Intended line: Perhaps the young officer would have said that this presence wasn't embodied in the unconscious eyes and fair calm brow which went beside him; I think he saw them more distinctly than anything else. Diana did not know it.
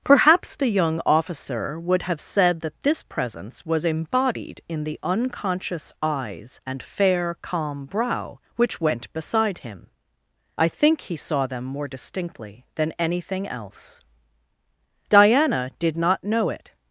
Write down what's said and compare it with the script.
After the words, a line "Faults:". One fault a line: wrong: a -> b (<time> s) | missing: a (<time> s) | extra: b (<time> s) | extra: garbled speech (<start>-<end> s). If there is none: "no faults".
Perhaps the young officer would have said that this presence was embodied in the unconscious eyes and fair calm brow which went beside him; I think he saw them more distinctly than anything else. Diana did not know it.
Faults:
wrong: wasn't -> was (3.6 s)